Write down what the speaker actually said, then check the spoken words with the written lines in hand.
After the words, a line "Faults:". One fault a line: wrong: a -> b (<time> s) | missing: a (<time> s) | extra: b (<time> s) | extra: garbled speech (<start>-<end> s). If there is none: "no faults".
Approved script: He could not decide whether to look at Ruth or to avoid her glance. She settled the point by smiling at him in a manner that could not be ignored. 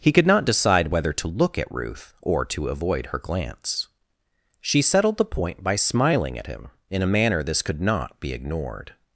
He could not decide whether to look at Ruth or to avoid her glance. She settled the point by smiling at him in a manner this could not be ignored.
Faults:
wrong: that -> this (7.4 s)